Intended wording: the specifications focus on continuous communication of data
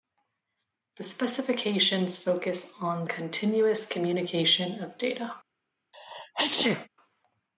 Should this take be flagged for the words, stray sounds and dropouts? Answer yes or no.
yes